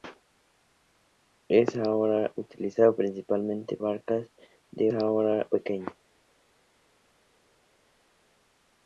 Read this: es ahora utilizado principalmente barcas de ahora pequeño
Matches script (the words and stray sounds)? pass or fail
pass